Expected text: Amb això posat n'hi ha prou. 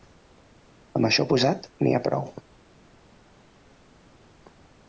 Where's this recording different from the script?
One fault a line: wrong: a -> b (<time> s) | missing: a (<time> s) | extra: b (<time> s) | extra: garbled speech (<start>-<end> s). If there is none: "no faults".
no faults